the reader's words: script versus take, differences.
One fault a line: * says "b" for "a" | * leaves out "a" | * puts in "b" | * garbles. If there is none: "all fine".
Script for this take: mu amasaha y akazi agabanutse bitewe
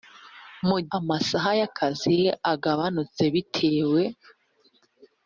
all fine